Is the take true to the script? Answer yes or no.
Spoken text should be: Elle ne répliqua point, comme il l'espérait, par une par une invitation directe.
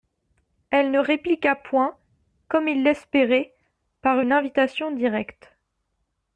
no